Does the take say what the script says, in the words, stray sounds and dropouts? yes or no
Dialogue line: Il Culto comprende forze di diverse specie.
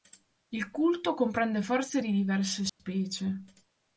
no